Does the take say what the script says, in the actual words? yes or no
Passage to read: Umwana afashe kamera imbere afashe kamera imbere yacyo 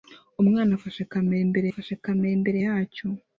yes